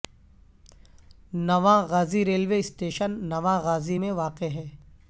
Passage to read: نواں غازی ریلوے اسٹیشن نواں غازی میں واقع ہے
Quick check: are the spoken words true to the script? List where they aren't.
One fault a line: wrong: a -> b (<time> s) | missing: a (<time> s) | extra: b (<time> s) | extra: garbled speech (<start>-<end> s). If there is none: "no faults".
no faults